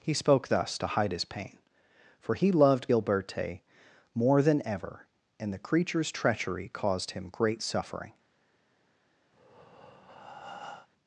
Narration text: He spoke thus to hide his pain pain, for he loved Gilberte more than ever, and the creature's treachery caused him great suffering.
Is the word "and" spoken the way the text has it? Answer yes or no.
yes